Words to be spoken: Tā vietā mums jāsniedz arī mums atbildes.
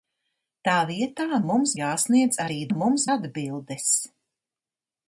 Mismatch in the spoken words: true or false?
false